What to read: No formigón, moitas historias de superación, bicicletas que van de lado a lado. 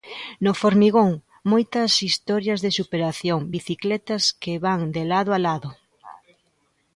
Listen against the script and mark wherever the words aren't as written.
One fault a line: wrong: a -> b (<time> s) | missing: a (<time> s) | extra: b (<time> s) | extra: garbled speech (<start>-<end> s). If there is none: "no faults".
no faults